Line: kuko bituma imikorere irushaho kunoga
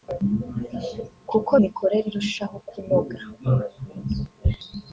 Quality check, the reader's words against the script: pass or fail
fail